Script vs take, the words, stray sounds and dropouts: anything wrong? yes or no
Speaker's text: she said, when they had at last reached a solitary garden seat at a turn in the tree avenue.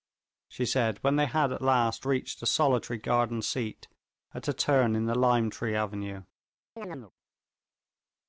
yes